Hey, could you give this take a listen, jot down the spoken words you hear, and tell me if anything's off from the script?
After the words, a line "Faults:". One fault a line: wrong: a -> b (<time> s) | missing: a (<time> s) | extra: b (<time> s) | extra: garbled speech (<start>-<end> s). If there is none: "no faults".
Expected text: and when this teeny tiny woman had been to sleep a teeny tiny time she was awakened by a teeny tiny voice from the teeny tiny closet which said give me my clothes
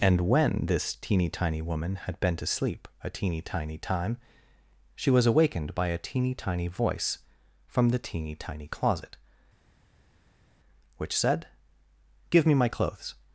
and when this teeny tiny woman had been to sleep a teeny tiny time she was awakened by a teeny tiny voice from the teeny tiny closet which said give me my clothes
Faults:
no faults